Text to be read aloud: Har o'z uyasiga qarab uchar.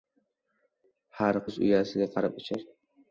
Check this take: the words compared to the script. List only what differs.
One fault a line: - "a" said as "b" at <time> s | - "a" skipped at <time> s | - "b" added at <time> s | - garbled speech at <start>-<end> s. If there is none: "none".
none